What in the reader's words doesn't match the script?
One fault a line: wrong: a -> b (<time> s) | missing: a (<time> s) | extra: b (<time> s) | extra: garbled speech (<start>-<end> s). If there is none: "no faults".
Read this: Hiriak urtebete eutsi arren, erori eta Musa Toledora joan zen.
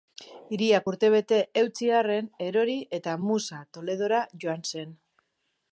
no faults